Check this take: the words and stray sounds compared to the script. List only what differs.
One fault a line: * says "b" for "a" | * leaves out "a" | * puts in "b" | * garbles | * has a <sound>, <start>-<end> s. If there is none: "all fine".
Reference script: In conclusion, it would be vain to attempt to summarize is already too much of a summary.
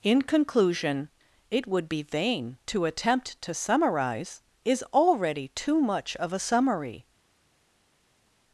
all fine